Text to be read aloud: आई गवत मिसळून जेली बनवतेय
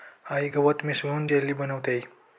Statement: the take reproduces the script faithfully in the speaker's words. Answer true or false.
true